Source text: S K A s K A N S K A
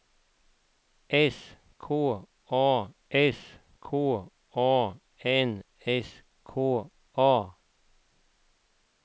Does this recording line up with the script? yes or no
yes